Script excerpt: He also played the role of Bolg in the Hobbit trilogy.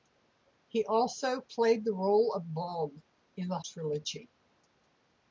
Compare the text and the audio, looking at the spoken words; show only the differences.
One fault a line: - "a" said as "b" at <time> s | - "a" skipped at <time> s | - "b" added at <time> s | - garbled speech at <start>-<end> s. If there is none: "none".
- "Hobbit" skipped at 3.6 s